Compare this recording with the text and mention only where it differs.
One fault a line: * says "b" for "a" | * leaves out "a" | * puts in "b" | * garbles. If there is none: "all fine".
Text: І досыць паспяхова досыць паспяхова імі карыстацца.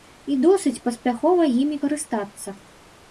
* leaves out "досыць паспяхова"